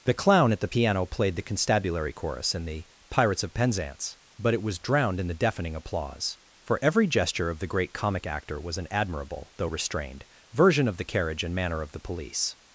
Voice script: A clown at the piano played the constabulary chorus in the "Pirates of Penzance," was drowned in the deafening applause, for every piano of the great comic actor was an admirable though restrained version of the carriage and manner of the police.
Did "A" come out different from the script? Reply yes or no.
yes